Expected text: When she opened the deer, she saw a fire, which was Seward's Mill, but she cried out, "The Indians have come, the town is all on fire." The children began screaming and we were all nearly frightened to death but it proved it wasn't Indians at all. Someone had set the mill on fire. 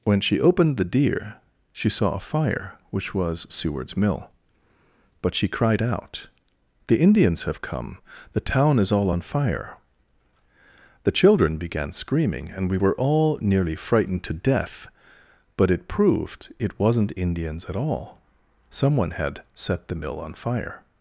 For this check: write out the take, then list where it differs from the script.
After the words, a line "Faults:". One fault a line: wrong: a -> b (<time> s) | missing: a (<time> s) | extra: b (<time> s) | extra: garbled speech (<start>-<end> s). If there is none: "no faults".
When she opened the deer, she saw a fire, which was Seward's Mill, but she cried out, "The Indians have come, the town is all on fire." The children began screaming and we were all nearly frightened to death but it proved it wasn't Indians at all. Someone had set the mill on fire.
Faults:
no faults